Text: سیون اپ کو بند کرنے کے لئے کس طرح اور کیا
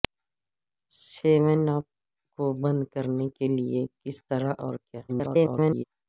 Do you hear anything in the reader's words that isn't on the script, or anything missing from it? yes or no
yes